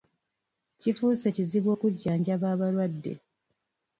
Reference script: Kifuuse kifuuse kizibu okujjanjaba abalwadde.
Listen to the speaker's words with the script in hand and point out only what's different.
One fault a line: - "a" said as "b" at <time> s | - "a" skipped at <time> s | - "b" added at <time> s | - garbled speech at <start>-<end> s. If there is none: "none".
- "kifuuse" skipped at 1.3 s